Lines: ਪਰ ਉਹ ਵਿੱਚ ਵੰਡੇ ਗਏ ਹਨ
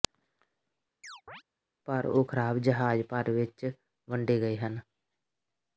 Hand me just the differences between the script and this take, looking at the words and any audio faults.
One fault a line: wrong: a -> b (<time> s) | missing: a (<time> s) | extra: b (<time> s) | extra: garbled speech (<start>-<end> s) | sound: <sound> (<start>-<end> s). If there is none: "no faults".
sound: chirp (1.0-1.4 s)
extra: ਖਰਾਬ ਜਹਾਜ਼ ਭਰ (2.2 s)